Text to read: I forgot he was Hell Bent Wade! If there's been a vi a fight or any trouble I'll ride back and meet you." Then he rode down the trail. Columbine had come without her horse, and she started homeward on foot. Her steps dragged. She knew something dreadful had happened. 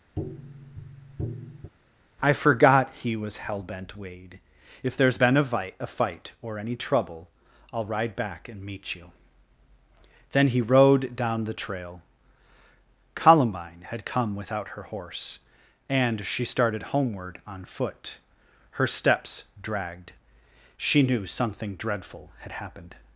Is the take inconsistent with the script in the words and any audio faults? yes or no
yes